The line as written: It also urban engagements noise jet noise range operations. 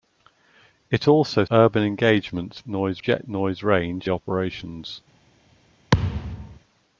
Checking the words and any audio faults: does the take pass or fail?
fail